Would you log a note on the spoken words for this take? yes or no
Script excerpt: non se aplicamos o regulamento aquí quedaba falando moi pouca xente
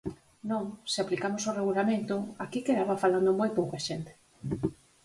no